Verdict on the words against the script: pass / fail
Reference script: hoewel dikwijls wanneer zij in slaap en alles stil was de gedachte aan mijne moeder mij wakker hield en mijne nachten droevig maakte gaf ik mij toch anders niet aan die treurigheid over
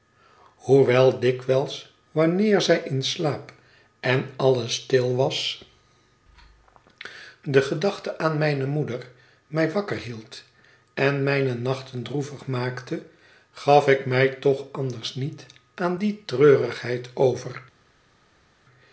pass